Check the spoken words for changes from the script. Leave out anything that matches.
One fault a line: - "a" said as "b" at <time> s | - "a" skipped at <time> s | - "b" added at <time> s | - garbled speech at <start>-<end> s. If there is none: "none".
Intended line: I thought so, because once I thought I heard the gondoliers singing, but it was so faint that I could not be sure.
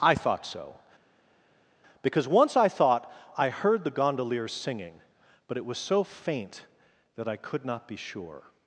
none